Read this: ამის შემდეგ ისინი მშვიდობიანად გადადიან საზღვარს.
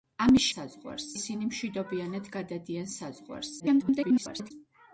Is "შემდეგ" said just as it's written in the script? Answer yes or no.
no